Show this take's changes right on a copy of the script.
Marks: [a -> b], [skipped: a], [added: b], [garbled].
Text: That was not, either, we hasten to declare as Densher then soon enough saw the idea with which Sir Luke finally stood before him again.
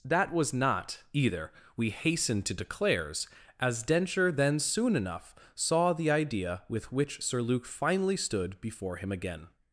That was not, either, we hasten to [declare -> declares] as Densher then soon enough saw the idea with which Sir Luke finally stood before him again.